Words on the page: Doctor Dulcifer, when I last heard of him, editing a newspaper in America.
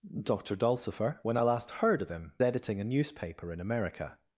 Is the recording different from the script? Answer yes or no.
no